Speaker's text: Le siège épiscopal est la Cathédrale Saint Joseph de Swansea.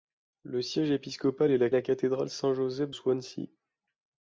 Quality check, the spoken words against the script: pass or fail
fail